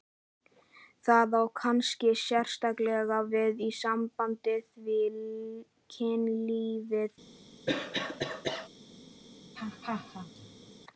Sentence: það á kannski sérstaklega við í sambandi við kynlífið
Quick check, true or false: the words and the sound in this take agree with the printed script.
false